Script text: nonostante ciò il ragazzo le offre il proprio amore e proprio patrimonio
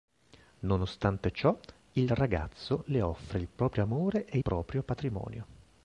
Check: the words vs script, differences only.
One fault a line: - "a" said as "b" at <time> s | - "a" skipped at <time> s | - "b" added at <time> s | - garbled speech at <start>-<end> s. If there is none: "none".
none